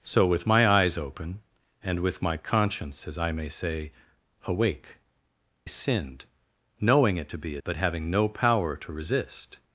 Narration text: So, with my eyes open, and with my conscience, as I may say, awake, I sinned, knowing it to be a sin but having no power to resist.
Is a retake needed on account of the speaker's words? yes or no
yes